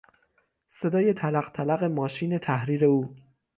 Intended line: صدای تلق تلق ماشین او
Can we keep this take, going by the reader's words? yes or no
no